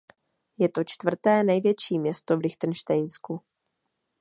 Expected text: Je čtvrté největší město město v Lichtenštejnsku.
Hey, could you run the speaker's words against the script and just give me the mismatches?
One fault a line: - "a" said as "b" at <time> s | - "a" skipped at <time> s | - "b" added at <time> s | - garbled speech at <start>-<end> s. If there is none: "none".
- "to" added at 0.7 s
- "město" skipped at 2.4 s